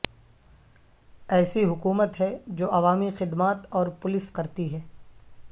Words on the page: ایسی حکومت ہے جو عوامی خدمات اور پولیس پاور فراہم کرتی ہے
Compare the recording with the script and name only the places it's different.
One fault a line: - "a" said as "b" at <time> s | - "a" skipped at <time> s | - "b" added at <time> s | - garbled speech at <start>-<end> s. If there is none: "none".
- "پاور فراہم" skipped at 4.3 s